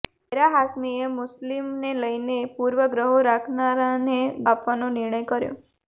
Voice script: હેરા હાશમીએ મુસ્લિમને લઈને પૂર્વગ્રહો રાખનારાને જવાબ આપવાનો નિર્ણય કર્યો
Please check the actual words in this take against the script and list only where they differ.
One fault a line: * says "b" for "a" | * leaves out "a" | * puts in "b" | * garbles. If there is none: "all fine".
* leaves out "જવાબ"